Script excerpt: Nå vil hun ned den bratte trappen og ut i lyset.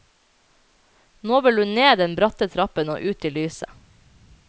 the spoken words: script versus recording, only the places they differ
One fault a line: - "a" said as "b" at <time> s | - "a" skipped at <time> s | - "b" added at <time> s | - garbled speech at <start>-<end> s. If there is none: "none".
none